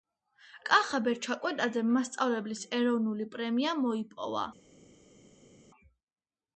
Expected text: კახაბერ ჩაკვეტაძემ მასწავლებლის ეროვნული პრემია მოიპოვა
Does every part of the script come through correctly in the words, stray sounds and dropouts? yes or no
yes